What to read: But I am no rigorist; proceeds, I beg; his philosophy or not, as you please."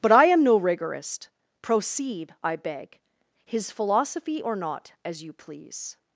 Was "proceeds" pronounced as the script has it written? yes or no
no